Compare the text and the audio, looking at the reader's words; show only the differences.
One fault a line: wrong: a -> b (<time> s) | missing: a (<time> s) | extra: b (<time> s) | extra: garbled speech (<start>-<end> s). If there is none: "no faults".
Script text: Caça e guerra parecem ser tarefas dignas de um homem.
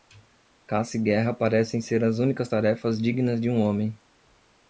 extra: as únicas (2.0 s)